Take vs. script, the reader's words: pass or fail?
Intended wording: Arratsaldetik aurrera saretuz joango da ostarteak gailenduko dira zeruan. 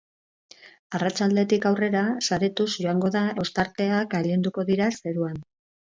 pass